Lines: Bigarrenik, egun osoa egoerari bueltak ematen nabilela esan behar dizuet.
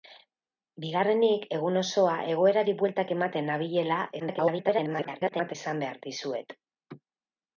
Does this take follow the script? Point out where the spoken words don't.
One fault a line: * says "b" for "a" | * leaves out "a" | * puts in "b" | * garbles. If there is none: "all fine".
* garbles